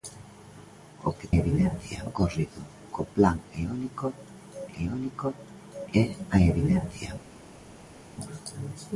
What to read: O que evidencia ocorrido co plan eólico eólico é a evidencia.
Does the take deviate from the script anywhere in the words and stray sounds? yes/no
no